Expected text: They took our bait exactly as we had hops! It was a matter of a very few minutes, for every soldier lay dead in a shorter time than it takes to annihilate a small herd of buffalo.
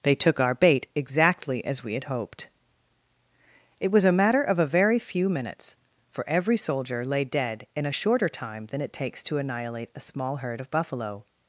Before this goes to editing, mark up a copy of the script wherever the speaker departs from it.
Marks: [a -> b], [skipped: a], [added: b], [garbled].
They took our bait exactly as we had [hops! -> hoped] It was a matter of a very few minutes, for every soldier lay dead in a shorter time than it takes to annihilate a small herd of buffalo.